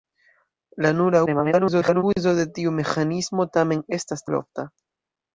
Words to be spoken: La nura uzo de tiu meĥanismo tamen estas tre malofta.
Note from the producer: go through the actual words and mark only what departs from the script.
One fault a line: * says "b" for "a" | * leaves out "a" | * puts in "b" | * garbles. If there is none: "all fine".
* garbles
* leaves out "tre"